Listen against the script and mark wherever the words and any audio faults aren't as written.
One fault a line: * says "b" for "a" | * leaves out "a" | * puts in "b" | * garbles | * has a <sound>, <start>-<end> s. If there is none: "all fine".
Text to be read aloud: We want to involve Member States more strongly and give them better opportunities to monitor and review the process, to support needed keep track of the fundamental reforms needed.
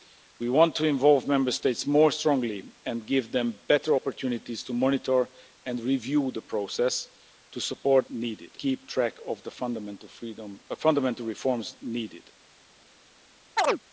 * has a chirp, 13.6-13.8 s